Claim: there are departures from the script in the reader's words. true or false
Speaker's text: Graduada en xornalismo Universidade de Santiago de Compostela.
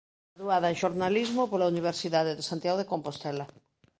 true